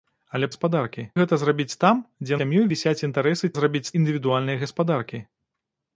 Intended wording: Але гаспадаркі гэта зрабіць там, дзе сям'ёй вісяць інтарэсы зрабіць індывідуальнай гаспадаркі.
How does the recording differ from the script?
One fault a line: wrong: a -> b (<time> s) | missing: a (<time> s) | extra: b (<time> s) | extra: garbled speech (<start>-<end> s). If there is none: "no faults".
no faults